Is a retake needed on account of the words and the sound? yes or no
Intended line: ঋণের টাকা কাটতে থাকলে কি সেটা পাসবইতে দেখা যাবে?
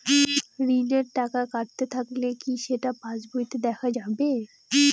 no